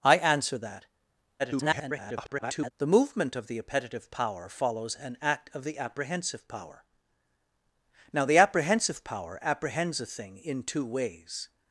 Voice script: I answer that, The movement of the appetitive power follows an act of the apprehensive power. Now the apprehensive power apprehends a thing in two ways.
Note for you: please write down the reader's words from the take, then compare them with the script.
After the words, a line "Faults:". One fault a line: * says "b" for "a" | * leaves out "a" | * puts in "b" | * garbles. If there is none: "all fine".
I answer that, [garbled] The movement of the appetitive power follows an act of the apprehensive power. Now the apprehensive power apprehends a thing in two ways.
Faults:
* garbles